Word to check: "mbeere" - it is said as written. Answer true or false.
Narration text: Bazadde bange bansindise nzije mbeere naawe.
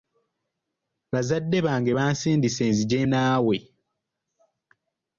false